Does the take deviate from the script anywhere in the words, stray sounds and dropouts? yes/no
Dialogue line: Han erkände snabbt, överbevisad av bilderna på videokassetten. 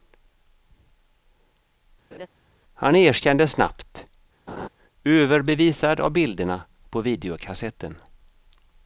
yes